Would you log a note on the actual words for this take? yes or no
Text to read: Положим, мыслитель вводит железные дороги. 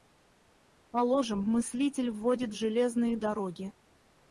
no